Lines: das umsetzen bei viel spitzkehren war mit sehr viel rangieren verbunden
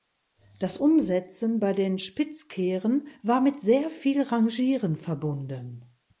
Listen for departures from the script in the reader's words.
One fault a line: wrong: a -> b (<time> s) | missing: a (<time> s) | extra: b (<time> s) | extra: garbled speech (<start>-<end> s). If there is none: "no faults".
wrong: viel -> den (1.7 s)